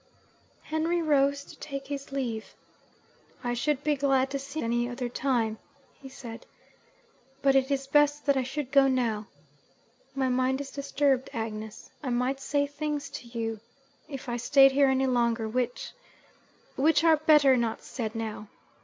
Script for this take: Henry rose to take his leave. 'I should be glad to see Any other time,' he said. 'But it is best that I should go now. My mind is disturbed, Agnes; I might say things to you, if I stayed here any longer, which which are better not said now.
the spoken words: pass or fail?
pass